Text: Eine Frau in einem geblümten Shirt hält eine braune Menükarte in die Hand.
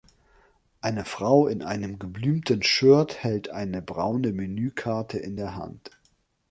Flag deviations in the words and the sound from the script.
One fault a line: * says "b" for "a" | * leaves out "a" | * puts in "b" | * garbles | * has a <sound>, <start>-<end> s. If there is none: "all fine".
* says "der" for "die"